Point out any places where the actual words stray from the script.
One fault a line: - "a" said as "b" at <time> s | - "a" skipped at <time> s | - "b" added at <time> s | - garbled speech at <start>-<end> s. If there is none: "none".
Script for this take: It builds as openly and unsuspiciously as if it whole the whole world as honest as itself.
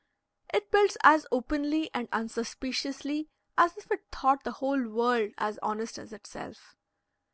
- "whole" said as "thought" at 4.1 s